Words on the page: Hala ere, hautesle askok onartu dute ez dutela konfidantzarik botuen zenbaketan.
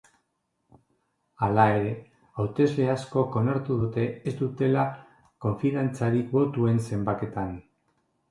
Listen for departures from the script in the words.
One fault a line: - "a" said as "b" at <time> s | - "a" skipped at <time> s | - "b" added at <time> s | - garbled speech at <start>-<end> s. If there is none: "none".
none